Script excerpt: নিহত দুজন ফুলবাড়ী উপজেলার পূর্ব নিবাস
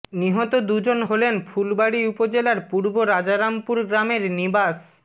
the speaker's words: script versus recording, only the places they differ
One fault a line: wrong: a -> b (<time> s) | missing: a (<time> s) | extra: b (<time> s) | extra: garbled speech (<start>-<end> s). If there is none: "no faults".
extra: হলেন (1.1 s)
extra: রাজারামপুর গ্রামের (3.0 s)